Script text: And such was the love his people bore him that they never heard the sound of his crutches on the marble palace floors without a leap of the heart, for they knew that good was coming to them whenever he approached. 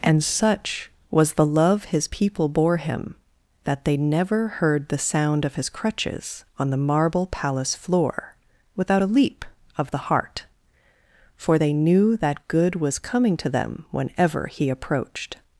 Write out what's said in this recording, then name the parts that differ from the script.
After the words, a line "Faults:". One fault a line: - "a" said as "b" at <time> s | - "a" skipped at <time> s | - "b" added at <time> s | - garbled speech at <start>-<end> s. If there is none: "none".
And such was the love his people bore him that they never heard the sound of his crutches on the marble palace floor without a leap of the heart, for they knew that good was coming to them whenever he approached.
Faults:
- "floors" said as "floor" at 7.8 s